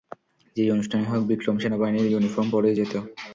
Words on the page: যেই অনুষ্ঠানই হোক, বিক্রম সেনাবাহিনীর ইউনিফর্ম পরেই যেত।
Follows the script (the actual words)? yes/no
yes